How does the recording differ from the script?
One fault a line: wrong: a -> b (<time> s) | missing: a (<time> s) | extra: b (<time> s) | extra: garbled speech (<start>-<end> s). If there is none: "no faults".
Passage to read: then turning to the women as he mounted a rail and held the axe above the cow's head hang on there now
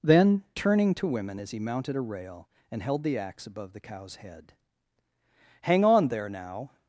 missing: the (1.1 s)